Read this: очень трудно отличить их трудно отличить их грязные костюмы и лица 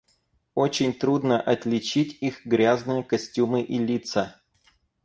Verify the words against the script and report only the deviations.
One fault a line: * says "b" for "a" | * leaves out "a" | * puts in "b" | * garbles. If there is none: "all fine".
* leaves out "трудно отличить их"